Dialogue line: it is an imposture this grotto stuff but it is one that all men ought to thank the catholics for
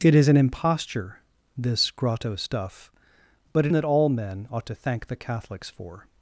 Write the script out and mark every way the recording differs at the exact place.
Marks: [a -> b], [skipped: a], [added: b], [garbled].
it is an imposture this grotto stuff but it [skipped: is one] that all men ought to thank the catholics for